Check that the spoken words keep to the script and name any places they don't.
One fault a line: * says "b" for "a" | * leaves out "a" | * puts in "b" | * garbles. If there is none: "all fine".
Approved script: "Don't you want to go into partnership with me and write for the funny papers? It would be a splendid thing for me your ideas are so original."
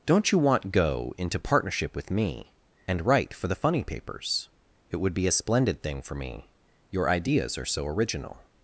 * leaves out "to"